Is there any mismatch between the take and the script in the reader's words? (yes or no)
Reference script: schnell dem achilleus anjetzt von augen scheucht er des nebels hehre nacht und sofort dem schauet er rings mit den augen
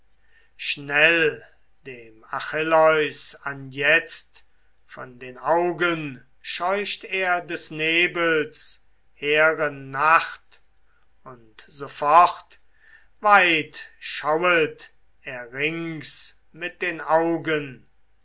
yes